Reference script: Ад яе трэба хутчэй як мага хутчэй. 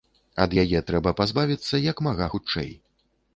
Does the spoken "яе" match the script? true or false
true